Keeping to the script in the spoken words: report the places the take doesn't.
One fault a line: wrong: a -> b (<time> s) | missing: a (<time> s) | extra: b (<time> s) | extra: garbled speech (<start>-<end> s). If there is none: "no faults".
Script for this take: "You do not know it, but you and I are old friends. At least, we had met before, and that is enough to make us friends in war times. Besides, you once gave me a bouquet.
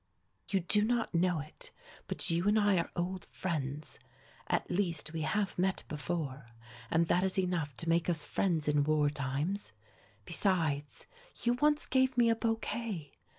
wrong: had -> have (5.2 s)